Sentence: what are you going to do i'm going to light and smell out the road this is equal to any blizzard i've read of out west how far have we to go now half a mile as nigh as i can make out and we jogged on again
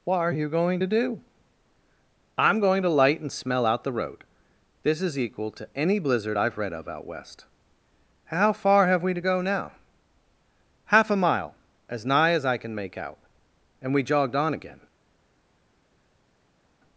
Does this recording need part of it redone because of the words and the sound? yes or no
no